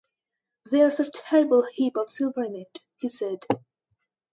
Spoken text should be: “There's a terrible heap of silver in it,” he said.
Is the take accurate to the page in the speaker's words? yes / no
yes